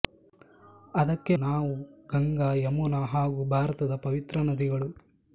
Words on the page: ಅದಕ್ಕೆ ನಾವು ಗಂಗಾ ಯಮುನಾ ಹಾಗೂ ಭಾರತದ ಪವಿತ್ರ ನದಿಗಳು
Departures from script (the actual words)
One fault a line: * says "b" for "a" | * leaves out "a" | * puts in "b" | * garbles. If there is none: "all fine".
all fine